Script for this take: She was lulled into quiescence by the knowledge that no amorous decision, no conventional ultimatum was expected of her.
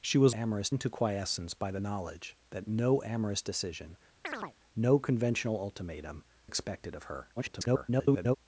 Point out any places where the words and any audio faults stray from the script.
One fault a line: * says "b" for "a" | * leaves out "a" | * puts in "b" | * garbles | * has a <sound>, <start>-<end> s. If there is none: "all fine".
* says "amorous" for "lulled"
* has a chirp, 4.2-4.5 s
* leaves out "was"
* garbles